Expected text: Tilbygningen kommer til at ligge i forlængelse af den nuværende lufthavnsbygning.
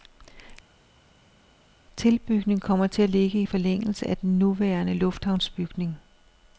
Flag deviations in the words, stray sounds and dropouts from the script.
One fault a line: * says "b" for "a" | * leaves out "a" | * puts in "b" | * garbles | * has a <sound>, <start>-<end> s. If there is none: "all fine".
all fine